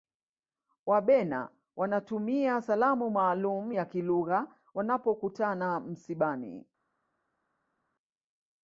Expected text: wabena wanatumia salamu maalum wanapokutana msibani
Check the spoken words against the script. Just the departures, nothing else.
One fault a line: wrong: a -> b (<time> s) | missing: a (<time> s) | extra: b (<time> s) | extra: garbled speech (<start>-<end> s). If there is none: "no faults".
extra: ya kilugha (3.7 s)